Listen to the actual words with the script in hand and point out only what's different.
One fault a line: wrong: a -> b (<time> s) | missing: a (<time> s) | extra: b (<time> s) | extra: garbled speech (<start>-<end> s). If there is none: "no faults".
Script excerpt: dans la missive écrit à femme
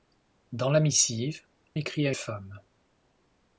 no faults